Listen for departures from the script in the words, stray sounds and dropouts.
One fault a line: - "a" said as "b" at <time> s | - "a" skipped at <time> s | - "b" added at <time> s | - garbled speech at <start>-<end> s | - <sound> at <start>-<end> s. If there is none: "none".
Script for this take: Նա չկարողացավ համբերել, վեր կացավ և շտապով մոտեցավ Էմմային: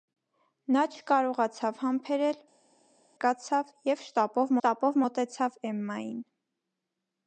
- "վեր" skipped at 2.4 s
- "շտապով" added at 4.6 s